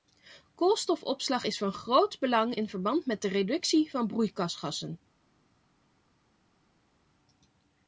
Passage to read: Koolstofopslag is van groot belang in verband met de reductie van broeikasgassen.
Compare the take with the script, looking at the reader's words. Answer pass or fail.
pass